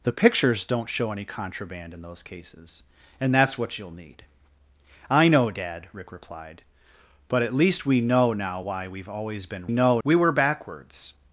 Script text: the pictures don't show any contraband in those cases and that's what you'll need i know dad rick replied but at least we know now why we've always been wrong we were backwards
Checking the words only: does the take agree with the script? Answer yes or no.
no